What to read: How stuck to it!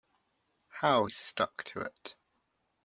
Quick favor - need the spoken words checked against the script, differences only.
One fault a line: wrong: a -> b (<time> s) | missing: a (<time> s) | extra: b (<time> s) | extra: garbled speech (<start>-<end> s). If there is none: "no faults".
no faults